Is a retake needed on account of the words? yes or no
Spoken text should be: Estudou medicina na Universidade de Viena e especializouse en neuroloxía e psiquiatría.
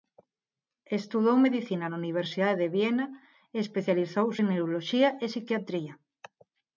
no